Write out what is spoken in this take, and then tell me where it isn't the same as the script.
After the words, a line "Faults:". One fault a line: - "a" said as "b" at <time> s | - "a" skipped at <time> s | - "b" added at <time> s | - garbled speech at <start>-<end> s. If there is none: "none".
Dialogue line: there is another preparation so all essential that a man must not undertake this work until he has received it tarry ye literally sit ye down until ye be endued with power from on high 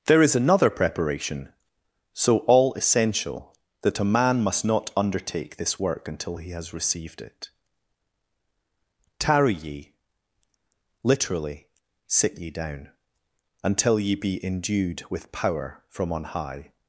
there is another preparation so all essential that a man must not undertake this work until he has received it tarry ye literally sit ye down until ye be endued with power from on high
Faults:
none